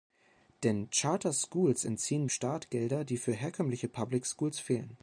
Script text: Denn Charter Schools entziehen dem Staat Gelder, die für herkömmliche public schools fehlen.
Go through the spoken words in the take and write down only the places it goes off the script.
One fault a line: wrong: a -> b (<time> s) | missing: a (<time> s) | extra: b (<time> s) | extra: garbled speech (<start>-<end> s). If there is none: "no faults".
missing: dem (2.3 s)